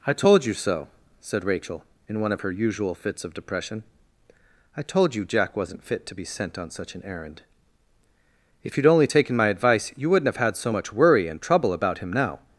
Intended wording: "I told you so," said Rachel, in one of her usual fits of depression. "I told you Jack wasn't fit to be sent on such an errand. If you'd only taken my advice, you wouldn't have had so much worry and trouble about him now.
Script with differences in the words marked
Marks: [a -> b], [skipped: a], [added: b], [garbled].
"I told you so," said Rachel, in one of her usual fits of depression. "I told you Jack wasn't fit to be sent on such an errand. If you'd only taken my advice, you wouldn't have had so much worry and trouble about him now.